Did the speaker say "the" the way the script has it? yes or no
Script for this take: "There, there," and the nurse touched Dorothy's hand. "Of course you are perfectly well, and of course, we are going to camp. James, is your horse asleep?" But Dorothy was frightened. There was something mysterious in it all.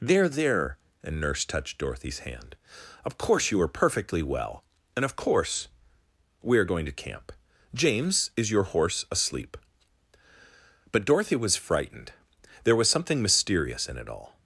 no